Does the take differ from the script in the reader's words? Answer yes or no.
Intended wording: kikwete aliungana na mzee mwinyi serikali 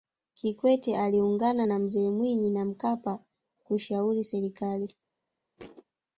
yes